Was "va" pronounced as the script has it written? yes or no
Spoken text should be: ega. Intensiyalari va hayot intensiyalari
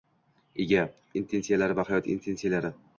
yes